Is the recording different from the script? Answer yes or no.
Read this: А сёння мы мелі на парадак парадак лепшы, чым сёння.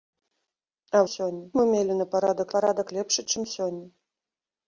no